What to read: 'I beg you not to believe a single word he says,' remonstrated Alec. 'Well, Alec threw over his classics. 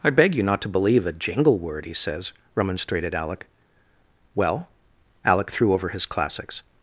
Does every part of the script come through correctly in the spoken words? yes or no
no